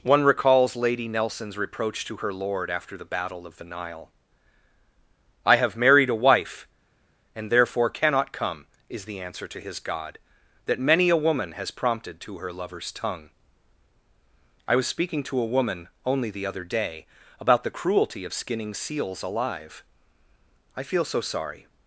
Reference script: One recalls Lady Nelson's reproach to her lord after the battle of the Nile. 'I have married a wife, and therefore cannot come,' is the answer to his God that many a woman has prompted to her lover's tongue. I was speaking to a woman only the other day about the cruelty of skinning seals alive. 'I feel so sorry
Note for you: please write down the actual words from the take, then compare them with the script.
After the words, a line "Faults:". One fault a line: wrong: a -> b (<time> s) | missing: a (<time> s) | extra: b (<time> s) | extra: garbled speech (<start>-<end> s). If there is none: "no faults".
One recalls Lady Nelson's reproach to her lord after the battle of the Nile. 'I have married a wife, and therefore cannot come,' is the answer to his God that many a woman has prompted to her lover's tongue. I was speaking to a woman only the other day about the cruelty of skinning seals alive. 'I feel so sorry
Faults:
no faults